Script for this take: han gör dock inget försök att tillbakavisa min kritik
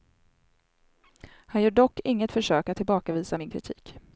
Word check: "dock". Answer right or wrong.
right